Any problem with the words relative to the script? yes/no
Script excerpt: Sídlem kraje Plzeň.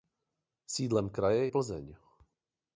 no